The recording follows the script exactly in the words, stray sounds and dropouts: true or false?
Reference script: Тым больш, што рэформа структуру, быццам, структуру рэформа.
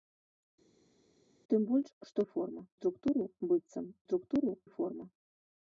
true